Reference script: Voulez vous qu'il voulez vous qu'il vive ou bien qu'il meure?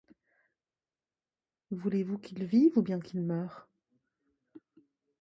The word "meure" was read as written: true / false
true